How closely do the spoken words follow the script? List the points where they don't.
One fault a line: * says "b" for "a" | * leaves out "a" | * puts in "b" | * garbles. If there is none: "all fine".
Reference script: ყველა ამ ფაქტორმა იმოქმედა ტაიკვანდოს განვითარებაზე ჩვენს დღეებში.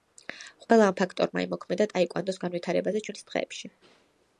all fine